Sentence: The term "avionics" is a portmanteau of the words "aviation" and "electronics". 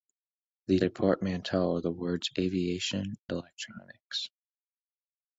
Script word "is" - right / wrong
wrong